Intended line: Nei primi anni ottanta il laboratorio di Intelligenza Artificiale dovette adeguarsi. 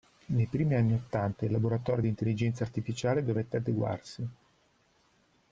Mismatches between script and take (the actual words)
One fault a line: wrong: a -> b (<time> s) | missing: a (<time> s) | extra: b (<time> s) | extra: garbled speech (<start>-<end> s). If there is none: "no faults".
no faults